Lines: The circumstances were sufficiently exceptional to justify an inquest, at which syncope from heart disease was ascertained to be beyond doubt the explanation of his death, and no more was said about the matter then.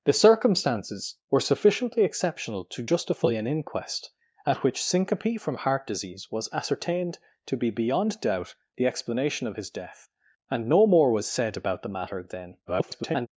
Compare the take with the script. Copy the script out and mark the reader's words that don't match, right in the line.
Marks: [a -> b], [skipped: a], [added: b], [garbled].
The circumstances were sufficiently exceptional to justify an inquest, at which syncope from heart disease was ascertained to be beyond doubt the explanation of his death, and no more was said about the matter then. [garbled]